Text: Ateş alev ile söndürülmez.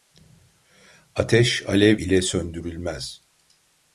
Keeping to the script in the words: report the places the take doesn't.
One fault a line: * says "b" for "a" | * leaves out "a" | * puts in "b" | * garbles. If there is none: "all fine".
all fine